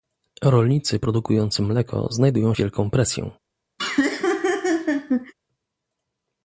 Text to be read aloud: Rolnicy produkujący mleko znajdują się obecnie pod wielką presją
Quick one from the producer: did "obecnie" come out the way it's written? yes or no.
no